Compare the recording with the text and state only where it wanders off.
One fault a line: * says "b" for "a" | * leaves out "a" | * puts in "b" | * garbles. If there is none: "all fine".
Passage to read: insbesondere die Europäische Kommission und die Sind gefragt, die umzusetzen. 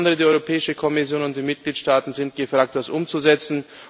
* puts in "Mitgliedstaaten"
* says "das" for "die"